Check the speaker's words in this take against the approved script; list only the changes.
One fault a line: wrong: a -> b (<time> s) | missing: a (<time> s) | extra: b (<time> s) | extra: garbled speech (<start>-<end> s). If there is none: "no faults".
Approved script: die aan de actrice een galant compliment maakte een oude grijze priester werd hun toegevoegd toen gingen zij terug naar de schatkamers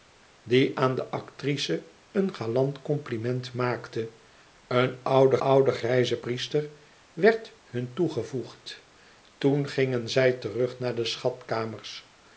extra: oude (5.4 s)